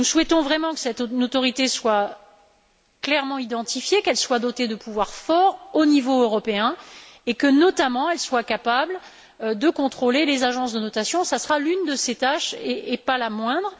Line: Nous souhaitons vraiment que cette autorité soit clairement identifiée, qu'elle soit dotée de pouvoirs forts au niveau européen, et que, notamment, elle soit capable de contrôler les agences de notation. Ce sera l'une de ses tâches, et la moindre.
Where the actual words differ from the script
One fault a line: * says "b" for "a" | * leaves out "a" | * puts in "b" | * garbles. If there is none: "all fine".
* puts in "pas"